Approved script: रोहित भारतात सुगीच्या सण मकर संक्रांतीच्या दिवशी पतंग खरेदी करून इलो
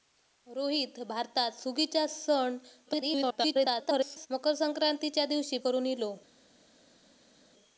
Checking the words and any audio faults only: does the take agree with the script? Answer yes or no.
no